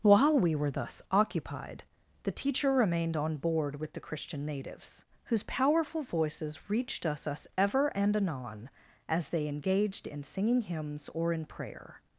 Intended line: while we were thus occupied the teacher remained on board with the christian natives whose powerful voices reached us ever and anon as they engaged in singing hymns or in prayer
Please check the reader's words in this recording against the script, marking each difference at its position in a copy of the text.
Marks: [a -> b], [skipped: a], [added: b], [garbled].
while we were thus occupied the teacher remained on board with the christian natives whose powerful voices reached us [added: us] ever and anon as they engaged in singing hymns or in prayer